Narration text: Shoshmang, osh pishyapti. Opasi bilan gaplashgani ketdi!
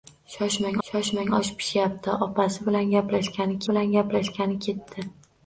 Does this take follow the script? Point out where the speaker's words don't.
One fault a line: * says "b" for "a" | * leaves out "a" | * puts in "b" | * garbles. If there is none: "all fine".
* puts in "shoshmang"
* puts in "bilan gaplashgani"